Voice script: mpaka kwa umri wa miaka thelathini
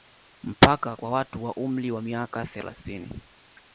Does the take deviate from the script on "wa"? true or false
false